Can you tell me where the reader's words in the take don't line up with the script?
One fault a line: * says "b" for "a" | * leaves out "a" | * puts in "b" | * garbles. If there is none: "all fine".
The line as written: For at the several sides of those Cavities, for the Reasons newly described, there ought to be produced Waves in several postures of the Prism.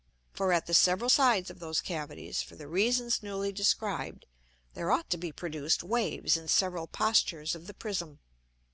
all fine